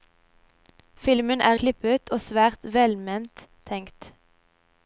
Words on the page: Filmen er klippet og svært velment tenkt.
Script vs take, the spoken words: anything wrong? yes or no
no